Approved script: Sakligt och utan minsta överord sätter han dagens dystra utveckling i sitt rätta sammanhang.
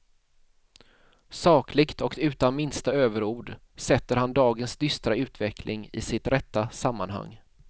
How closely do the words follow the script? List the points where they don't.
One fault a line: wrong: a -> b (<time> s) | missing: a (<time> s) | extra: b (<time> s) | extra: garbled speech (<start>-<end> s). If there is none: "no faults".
no faults